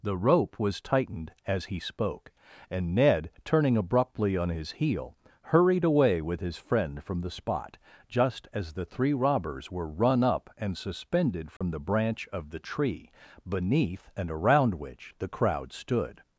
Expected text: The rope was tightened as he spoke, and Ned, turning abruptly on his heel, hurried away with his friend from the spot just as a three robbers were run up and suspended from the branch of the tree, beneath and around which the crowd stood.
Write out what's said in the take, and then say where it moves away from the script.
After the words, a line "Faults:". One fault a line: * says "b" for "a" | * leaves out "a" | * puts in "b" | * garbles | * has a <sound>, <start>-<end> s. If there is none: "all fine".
The rope was tightened as he spoke, and Ned, turning abruptly on his heel, hurried away with his friend from the spot just as the three robbers were run up and suspended from the branch of the tree, beneath and around which the crowd stood.
Faults:
* says "the" for "a"
* has a dropout, 11.6-11.6 s